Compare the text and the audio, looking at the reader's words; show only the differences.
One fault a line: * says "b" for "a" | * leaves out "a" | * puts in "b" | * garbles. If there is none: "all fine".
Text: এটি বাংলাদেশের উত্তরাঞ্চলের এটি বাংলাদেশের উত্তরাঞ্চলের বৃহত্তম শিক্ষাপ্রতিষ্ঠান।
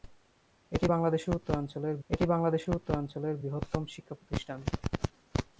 all fine